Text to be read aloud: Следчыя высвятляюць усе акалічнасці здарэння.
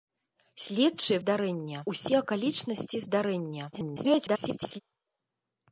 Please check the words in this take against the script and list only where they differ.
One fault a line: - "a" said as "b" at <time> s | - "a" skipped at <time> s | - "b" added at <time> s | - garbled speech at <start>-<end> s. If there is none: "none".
- "высвятляюць" said as "здарэння" at 1.2 s
- garbled speech at 3.7-4.8 s